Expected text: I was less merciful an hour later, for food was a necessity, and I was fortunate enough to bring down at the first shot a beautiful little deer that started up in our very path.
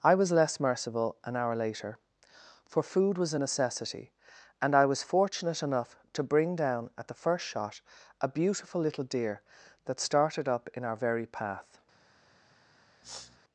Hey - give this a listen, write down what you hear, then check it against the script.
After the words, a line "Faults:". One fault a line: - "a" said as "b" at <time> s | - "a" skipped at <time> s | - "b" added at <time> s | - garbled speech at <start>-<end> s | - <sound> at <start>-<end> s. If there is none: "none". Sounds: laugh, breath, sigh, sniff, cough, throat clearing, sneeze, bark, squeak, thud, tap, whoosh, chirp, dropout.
I was less merciful an hour later, for food was a necessity, and I was fortunate enough to bring down at the first shot a beautiful little deer that started up in our very path.
Faults:
- sniff at 13.0-13.4 s